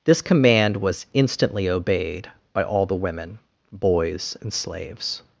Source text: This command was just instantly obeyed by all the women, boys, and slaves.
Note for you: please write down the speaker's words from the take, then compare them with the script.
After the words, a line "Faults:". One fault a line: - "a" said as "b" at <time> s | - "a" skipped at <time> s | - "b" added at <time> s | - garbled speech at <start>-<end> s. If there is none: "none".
This command was instantly obeyed by all the women, boys, and slaves.
Faults:
- "just" skipped at 1.1 s